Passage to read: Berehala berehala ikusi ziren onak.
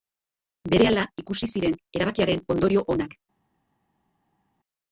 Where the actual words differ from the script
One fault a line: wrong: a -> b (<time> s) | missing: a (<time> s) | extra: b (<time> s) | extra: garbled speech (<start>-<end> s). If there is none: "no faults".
missing: berehala (1.0 s)
extra: erabakiaren ondorio (2.0 s)